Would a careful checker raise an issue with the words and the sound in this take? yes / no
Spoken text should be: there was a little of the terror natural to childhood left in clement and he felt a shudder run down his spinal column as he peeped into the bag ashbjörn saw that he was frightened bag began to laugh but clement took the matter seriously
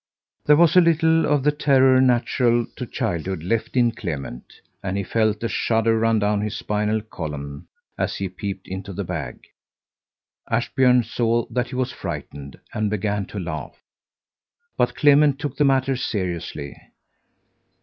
yes